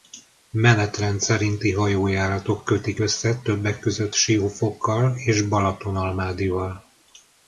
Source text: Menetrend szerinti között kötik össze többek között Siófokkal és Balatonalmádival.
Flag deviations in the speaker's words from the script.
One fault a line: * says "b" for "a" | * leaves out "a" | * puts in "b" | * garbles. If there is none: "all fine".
* says "hajójáratok" for "között"